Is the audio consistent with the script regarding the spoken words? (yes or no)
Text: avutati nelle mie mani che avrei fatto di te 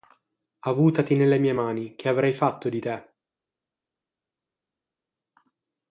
yes